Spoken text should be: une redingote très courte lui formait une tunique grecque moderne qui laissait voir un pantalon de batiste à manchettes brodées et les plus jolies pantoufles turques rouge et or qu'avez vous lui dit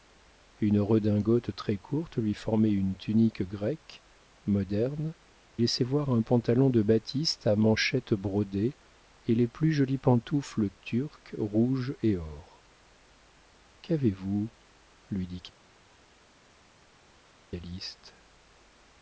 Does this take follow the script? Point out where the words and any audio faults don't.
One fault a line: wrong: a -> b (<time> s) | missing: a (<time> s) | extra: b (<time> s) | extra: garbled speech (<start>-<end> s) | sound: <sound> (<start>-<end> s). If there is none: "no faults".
missing: qui (5.1 s)